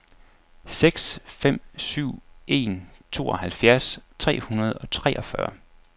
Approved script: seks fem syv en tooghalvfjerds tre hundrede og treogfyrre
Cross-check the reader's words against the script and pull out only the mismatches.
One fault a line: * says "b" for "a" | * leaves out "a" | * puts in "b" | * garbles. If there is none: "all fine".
all fine